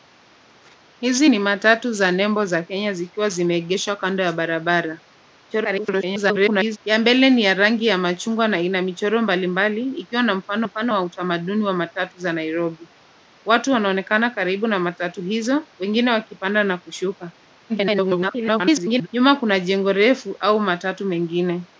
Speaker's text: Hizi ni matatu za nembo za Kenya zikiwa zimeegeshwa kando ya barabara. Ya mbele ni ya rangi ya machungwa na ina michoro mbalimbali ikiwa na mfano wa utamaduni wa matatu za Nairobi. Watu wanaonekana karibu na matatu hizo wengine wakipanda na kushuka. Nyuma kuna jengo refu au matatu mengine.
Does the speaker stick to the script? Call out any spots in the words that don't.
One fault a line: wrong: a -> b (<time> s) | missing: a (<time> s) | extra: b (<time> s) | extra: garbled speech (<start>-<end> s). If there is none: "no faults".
extra: garbled speech (5.5-6.8 s)
extra: mfano (10.6 s)
extra: garbled speech (17.7-19.1 s)